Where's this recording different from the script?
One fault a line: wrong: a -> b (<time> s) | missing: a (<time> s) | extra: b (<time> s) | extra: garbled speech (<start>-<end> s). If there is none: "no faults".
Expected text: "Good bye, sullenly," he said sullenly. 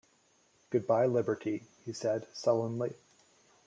wrong: sullenly -> liberty (1.1 s)